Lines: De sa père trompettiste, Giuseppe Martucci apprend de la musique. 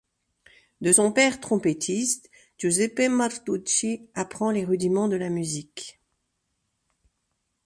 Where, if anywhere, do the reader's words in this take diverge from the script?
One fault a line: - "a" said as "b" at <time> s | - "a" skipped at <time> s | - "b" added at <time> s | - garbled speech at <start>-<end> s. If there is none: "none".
- "sa" said as "son" at 0.9 s
- "les rudiments" added at 4.5 s